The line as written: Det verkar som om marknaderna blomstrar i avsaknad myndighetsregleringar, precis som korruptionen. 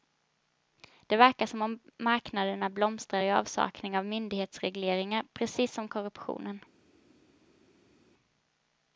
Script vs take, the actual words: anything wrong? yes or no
yes